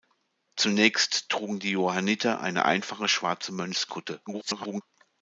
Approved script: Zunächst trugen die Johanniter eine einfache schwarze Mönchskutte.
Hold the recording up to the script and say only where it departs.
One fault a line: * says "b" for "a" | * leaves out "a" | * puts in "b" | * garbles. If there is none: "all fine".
* garbles